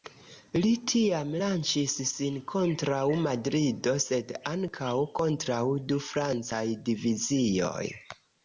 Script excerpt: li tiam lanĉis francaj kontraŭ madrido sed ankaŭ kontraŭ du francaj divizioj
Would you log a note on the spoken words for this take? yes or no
yes